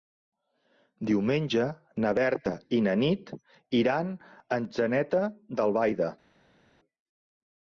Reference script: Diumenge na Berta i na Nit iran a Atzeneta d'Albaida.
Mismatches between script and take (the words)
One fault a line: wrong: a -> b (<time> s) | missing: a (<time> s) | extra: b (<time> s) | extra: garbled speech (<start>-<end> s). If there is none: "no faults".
no faults